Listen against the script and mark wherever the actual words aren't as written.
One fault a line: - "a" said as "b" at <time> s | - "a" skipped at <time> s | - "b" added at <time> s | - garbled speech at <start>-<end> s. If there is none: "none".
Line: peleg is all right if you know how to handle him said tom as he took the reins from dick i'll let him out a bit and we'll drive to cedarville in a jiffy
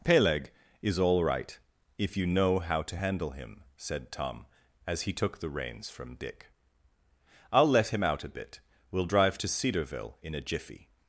- "and" skipped at 8.6 s